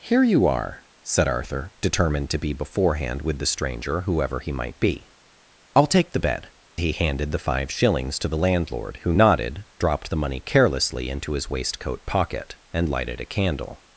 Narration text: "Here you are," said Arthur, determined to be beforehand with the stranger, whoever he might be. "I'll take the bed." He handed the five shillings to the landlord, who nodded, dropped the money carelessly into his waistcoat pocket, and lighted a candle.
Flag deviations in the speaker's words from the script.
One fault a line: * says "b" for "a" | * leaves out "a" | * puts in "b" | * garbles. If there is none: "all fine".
all fine